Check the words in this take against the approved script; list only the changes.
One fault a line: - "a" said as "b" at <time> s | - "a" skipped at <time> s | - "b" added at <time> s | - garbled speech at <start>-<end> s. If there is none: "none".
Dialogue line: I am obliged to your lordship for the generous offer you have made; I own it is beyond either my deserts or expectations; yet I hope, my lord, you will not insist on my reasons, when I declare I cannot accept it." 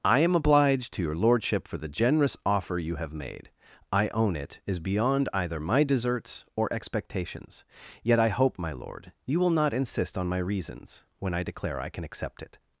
- "cannot" said as "can" at 11.9 s